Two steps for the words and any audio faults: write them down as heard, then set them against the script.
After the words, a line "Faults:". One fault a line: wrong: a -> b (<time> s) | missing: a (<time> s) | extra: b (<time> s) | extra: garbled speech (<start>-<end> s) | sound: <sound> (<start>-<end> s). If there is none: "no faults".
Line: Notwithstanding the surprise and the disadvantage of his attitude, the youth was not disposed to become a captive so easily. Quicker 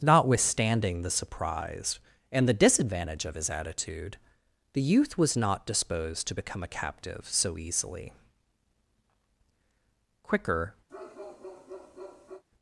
Notwithstanding the surprise and the disadvantage of his attitude, the youth was not disposed to become a captive so easily. Quicker
Faults:
sound: bark (10.9-12.4 s)